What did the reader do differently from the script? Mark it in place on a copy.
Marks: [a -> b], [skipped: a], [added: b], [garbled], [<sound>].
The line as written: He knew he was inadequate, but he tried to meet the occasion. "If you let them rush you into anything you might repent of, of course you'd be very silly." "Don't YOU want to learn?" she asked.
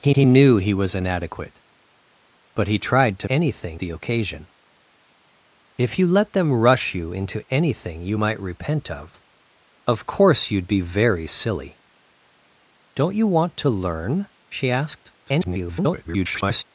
He [added: he] knew he was inadequate, but he tried to [meet -> anything] the occasion. "If you let them rush you into anything you might repent of, of course you'd be very silly." "Don't YOU want to learn?" she asked. [garbled]